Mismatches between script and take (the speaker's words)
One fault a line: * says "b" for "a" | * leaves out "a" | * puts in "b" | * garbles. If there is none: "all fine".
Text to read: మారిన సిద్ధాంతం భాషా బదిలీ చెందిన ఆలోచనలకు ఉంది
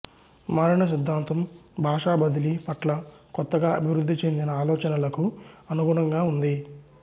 * puts in "పట్ల కొత్తగా అభివృద్ధి"
* puts in "అనుగుణంగా"